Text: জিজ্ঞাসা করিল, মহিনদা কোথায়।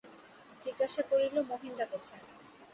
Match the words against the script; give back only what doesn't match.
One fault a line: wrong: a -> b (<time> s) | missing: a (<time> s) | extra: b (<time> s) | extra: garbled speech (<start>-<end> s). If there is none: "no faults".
no faults